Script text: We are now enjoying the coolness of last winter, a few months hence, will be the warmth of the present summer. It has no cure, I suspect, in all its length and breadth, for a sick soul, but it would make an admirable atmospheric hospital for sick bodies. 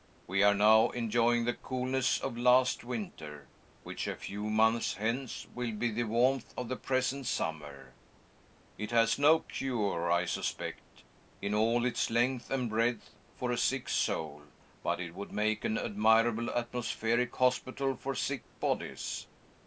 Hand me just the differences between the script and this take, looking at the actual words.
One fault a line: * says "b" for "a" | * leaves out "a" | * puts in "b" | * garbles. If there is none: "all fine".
* puts in "which"